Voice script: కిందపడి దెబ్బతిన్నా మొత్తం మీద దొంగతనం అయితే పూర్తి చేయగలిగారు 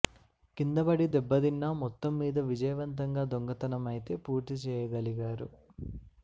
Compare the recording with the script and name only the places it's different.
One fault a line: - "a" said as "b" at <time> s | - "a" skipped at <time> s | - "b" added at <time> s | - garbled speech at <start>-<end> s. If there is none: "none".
- "విజయవంతంగా" added at 2.5 s